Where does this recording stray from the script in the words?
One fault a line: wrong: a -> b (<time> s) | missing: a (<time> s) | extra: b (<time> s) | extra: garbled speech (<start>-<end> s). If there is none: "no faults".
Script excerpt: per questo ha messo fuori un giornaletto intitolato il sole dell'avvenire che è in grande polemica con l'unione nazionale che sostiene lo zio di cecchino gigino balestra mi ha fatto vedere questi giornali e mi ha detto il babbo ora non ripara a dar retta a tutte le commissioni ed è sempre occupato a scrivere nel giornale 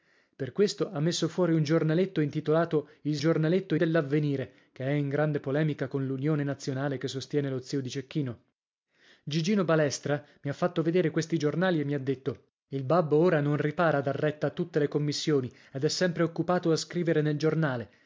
wrong: sole -> giornaletto (3.2 s)